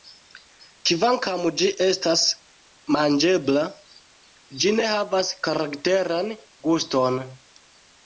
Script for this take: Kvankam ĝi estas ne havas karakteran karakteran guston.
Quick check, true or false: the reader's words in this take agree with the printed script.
false